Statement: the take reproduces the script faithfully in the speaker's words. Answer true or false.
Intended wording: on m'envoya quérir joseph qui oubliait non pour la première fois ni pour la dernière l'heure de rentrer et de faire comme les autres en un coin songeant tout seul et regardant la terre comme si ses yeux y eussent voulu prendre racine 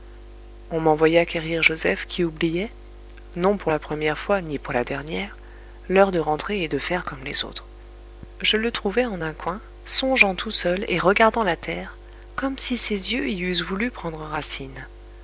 false